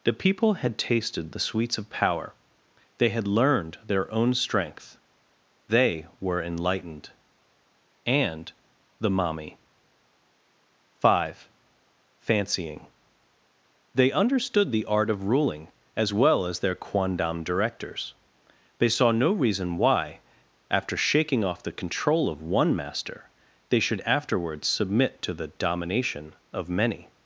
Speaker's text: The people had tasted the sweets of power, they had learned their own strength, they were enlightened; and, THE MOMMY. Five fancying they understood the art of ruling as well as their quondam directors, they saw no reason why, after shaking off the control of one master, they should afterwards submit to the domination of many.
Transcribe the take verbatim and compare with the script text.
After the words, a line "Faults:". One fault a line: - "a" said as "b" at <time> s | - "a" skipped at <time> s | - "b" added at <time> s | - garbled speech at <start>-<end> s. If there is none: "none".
The people had tasted the sweets of power, they had learned their own strength, they were enlightened; and, THE MOMMY. Five fancying they understood the art of ruling as well as their quondam directors, they saw no reason why, after shaking off the control of one master, they should afterwards submit to the domination of many.
Faults:
none